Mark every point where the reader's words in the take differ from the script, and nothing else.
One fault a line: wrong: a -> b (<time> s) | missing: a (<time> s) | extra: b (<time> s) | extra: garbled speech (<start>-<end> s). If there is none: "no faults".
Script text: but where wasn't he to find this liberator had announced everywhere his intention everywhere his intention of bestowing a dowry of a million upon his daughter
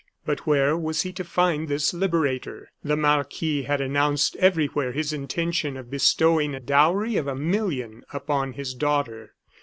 wrong: wasn't -> was (0.8 s)
extra: the marquis (2.8 s)
missing: everywhere his intention (5.8 s)